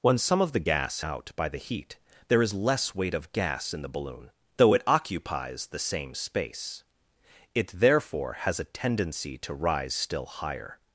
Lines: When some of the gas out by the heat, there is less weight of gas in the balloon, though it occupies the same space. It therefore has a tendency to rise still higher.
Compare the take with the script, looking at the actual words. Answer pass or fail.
pass